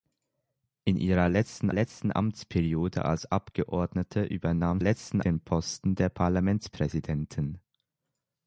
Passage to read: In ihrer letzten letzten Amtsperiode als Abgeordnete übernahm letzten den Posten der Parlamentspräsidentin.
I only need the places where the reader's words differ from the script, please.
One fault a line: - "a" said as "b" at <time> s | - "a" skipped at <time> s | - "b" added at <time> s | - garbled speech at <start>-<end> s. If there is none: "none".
none